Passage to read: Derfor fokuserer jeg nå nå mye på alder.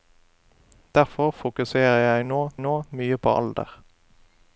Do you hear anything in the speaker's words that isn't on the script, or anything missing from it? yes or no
no